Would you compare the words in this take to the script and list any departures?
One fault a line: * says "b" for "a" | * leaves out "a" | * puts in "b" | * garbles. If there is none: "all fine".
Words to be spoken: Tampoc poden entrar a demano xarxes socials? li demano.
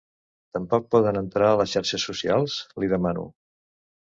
* says "les" for "demano"